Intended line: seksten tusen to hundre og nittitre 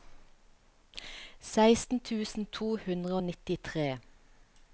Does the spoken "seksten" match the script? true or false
true